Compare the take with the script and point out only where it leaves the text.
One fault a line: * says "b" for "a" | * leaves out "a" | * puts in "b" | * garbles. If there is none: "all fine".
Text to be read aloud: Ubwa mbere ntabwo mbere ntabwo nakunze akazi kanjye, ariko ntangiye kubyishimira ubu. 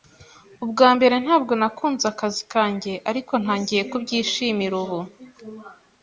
* leaves out "mbere ntabwo"